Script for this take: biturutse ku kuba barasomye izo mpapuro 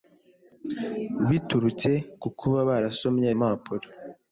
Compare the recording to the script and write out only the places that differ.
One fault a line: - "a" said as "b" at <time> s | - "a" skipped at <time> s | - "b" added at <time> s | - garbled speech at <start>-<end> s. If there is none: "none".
- "izo" skipped at 3.3 s